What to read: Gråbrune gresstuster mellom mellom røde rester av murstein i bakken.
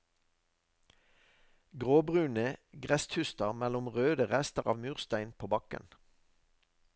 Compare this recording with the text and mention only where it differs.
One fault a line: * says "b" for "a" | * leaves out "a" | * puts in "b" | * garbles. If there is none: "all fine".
* leaves out "mellom"
* says "på" for "i"